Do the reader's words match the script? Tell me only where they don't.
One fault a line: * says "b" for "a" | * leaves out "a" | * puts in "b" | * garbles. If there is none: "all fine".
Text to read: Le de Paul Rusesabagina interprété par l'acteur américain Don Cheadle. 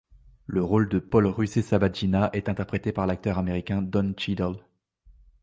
* puts in "rôle"
* puts in "est"